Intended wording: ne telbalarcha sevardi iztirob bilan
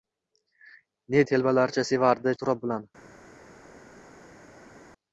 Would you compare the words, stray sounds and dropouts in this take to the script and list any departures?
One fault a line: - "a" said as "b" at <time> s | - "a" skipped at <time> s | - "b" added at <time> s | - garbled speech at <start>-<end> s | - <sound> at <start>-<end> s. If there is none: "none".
none